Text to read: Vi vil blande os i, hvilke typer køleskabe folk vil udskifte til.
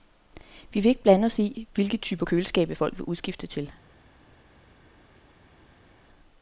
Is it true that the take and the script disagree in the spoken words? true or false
true